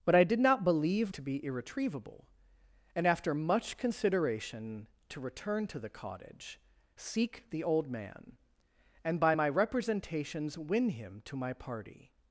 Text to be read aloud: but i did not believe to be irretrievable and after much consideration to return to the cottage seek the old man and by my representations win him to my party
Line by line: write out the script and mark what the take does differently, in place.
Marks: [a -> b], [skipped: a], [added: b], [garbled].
but i did not believe to be irretrievable and after much consideration to return to the cottage seek the old man and by my representations win him to my party